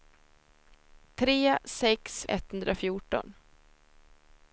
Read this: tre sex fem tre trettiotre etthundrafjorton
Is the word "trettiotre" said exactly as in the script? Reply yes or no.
no